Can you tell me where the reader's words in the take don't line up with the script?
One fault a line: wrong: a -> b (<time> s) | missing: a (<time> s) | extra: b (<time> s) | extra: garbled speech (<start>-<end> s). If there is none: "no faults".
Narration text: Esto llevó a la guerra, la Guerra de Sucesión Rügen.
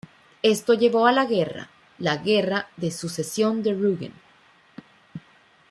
extra: de (3.6 s)